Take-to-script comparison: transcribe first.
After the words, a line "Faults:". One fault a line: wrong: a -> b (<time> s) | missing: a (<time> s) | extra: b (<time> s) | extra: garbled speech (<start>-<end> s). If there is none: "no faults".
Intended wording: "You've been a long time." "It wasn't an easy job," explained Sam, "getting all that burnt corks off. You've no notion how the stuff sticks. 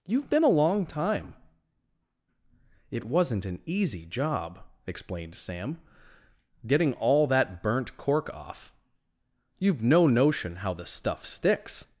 "You've been a long time." "It wasn't an easy job," explained Sam, "getting all that burnt cork off. You've no notion how the stuff sticks.
Faults:
wrong: corks -> cork (8.0 s)